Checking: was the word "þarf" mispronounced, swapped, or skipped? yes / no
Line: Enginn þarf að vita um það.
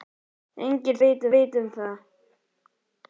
yes